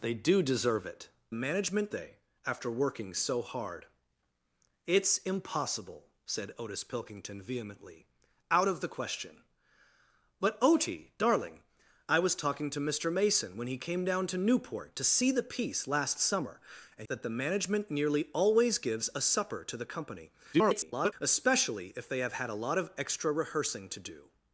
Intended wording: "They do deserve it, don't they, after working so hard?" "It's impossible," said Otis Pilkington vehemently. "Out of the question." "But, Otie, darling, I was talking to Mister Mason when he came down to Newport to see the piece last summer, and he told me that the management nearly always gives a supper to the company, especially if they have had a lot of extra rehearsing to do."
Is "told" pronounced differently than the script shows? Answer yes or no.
yes